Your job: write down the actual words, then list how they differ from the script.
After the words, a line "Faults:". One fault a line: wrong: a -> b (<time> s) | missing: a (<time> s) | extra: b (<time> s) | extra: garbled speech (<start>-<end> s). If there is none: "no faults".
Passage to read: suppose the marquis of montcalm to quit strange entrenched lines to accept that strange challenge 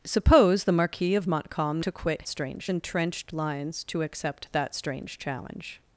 suppose the marquis of montcalm to quit strange entrenched lines to accept that strange challenge
Faults:
no faults